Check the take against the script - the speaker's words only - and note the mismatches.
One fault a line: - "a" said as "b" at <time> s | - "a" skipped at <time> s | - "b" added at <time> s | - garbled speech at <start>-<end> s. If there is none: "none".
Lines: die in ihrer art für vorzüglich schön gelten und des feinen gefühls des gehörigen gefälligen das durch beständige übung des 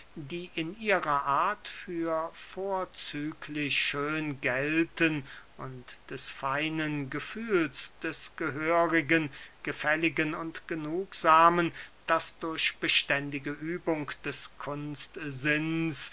- "und genugsamen" added at 10.3 s